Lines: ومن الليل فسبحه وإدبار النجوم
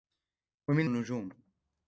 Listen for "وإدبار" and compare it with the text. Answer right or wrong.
wrong